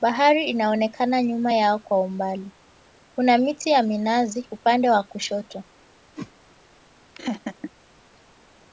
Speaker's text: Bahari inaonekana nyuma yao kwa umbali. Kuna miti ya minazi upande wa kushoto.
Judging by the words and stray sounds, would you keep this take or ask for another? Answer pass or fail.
fail